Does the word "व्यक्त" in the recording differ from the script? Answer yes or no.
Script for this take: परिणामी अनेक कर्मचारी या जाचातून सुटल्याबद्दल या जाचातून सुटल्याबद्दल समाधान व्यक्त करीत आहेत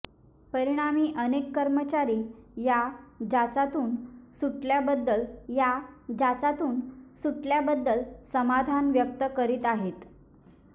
no